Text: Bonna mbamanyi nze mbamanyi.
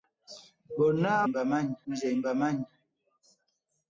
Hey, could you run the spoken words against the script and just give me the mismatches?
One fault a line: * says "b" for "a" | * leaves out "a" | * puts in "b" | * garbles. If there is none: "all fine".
all fine